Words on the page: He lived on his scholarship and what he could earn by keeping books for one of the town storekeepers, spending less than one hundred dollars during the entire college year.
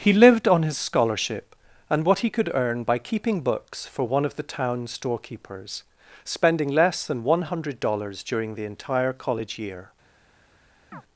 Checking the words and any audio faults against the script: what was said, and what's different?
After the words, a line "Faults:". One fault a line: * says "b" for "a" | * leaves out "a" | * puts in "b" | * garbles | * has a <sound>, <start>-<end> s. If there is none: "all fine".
He lived on his scholarship and what he could earn by keeping books for one of the town storekeepers, spending less than one hundred dollars during the entire college year.
Faults:
* has a chirp, 10.9-11.0 s